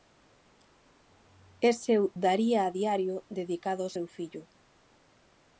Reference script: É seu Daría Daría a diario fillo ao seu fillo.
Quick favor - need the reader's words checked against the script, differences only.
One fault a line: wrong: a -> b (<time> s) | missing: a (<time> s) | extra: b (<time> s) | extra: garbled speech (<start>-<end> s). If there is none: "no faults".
missing: Daría (2.6 s)
wrong: fillo -> dedicado (3.4 s)